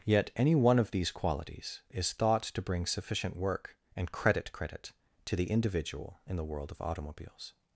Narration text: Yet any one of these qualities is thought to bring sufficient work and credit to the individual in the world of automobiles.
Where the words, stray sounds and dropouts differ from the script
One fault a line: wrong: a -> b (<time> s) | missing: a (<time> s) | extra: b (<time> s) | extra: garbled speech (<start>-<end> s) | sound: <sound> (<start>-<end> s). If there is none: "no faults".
extra: credit (4.5 s)